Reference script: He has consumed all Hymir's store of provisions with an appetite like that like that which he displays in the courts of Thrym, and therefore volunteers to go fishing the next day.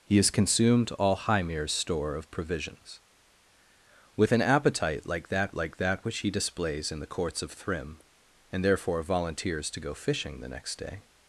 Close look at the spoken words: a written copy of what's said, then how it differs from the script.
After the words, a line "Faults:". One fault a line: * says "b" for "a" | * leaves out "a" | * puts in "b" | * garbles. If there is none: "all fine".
He has consumed all Hymir's store of provisions with an appetite like that like that which he displays in the courts of Thrym, and therefore volunteers to go fishing the next day.
Faults:
all fine